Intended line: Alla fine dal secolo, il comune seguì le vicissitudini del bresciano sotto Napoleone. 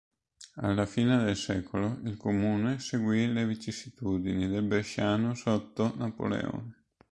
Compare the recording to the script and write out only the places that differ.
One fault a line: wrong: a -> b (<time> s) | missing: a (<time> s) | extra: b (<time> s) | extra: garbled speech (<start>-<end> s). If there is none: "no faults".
wrong: dal -> del (1.2 s)